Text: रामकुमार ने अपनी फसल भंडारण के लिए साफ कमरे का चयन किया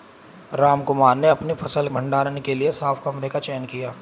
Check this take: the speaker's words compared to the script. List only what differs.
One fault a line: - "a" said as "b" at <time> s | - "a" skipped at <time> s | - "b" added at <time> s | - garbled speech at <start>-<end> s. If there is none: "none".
none